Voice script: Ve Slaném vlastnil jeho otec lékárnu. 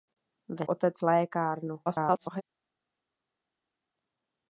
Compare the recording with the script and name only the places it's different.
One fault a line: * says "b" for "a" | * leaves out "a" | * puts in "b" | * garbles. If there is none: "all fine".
* leaves out "Slaném vlastnil jeho"
* garbles